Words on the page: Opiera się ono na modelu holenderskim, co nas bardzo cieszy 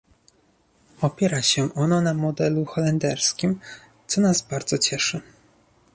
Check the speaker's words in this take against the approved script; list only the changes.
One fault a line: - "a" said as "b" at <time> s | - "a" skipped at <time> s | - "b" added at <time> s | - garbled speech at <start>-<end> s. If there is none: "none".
none